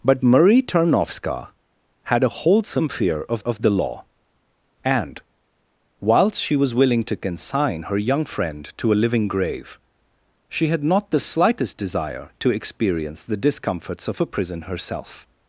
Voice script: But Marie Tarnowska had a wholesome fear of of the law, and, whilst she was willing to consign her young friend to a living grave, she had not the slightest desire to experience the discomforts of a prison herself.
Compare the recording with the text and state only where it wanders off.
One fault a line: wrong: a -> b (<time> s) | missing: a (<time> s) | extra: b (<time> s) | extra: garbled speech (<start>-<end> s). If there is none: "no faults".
no faults